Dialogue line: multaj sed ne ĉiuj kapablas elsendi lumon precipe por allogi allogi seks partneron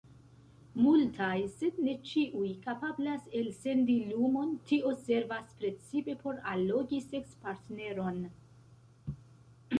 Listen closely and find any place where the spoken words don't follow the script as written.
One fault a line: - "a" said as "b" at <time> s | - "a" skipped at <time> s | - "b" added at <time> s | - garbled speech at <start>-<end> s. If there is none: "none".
- "tio servas" added at 4.7 s
- "allogi" skipped at 7.0 s